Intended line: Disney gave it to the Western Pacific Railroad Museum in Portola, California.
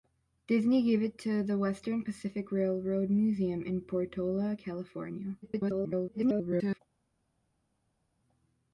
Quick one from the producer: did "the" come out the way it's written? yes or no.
yes